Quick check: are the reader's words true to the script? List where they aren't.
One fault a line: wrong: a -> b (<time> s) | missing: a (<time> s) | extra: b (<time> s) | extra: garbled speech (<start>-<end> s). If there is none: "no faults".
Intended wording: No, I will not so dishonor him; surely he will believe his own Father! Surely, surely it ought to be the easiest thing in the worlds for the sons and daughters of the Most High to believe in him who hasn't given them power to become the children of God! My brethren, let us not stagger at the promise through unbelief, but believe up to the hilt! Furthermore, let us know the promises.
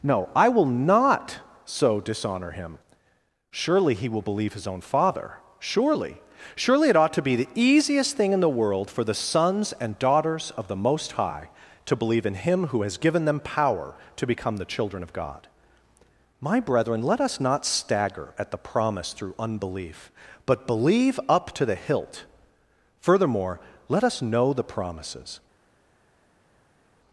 wrong: worlds -> world (8.5 s)
wrong: hasn't -> has (12.8 s)